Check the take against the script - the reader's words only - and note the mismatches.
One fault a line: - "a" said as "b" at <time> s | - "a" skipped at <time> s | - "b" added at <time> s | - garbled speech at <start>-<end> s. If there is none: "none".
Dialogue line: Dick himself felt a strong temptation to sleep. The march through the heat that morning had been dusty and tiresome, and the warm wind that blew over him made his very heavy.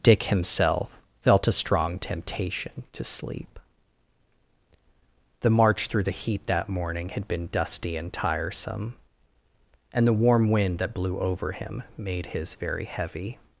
none